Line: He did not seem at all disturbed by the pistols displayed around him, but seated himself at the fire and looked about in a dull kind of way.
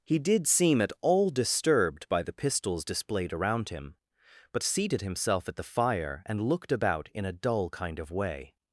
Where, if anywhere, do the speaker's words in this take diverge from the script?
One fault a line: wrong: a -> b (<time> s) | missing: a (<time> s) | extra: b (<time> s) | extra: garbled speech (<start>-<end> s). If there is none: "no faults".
missing: not (0.5 s)